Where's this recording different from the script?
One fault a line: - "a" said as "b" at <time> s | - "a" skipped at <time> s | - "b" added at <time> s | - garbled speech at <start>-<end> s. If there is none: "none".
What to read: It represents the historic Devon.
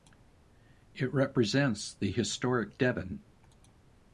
none